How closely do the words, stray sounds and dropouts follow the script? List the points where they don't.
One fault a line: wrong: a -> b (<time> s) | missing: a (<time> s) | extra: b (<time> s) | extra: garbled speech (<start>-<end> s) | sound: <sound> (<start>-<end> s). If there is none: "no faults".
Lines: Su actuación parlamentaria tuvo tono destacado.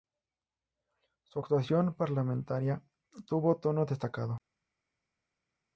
no faults